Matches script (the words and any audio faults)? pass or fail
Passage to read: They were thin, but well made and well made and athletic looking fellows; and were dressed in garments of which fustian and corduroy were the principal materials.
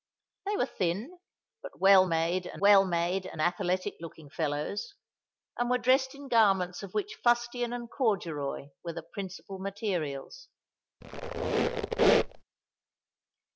fail